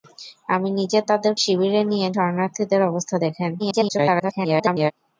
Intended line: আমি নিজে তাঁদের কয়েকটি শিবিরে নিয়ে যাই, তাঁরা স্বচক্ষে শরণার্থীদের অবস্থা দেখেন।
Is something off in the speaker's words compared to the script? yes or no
yes